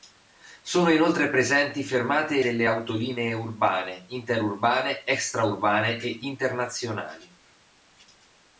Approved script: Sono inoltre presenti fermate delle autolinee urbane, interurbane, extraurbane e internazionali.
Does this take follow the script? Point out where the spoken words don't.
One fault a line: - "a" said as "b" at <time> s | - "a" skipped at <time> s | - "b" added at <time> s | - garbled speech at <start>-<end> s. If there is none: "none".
none